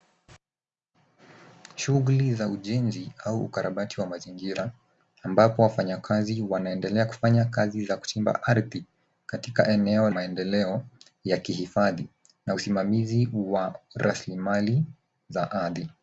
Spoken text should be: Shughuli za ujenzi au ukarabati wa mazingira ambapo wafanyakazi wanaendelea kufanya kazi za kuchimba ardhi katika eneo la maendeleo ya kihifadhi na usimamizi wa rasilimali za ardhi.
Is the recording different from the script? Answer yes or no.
yes